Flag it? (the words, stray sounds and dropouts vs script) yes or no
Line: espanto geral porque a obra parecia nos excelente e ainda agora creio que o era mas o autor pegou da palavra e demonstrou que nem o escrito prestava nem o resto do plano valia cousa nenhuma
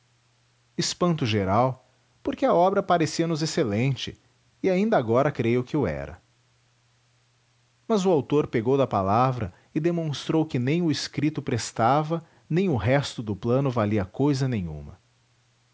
no